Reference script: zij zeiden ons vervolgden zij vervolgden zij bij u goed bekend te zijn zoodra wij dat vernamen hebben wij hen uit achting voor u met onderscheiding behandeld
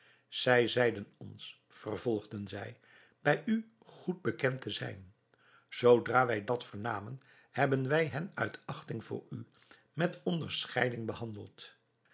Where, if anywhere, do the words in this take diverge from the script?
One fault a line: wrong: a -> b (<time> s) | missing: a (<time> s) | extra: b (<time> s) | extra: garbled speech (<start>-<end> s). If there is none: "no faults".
missing: vervolgden zij (2.8 s)